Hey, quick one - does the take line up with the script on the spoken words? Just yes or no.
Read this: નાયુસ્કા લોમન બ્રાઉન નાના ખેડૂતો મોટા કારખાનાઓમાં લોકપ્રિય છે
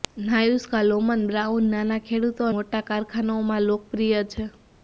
yes